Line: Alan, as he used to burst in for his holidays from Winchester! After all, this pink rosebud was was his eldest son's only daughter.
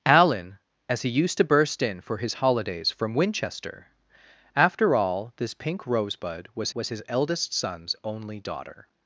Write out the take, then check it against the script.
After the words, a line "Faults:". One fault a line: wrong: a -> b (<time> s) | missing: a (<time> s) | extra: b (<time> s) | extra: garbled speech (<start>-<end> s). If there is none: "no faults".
Alan, as he used to burst in for his holidays from Winchester! After all, this pink rosebud was was his eldest son's only daughter.
Faults:
no faults